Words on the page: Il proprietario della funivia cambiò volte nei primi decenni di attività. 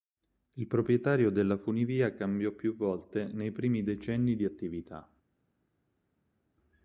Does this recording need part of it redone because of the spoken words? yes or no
yes